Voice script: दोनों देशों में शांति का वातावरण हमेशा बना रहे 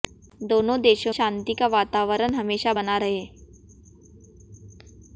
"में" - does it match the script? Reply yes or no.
no